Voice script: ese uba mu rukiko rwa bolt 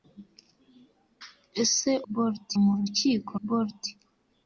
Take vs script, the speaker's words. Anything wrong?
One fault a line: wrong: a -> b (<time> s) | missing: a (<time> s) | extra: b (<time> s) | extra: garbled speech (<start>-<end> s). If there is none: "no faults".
wrong: uba -> bolt (2.1 s)
missing: rwa (3.3 s)